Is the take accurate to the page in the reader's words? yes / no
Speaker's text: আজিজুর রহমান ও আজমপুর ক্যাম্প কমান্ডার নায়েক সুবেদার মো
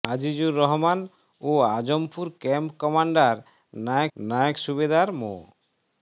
no